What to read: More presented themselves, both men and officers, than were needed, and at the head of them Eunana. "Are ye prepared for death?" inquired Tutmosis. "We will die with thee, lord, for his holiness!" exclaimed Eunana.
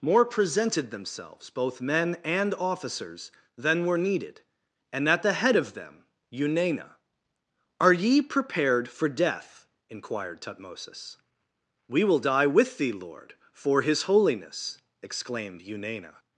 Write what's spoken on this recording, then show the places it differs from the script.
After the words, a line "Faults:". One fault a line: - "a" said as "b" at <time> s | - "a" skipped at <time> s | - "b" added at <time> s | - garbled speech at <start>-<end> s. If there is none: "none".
More presented themselves, both men and officers, than were needed, and at the head of them Eunana. "Are ye prepared for death?" inquired Tutmosis. "We will die with thee, lord, for his holiness!" exclaimed Eunana.
Faults:
none